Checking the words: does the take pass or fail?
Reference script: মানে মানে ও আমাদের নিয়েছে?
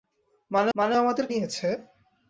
pass